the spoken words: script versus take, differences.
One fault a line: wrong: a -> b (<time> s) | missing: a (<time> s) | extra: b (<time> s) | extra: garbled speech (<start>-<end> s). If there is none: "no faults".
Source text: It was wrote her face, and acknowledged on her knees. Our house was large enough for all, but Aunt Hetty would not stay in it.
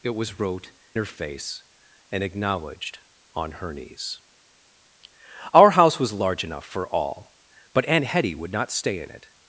no faults